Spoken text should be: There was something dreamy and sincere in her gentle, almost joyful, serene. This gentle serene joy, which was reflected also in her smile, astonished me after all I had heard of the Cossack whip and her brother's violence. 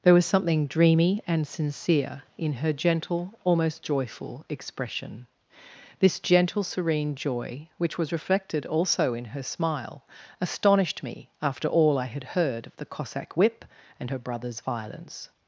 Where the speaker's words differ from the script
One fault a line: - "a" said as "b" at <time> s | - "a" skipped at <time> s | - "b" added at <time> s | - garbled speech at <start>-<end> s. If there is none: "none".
- "serene" said as "expression" at 4.5 s